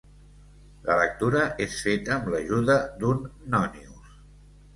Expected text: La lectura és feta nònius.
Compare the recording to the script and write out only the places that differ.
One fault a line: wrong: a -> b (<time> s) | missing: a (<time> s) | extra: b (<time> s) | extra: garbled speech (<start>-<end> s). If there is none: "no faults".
extra: amb l'ajuda d'un (2.2 s)